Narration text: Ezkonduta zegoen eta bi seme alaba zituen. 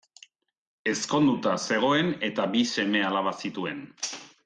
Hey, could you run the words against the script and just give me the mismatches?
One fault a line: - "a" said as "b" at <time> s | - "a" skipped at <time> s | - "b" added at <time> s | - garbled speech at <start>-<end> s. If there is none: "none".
none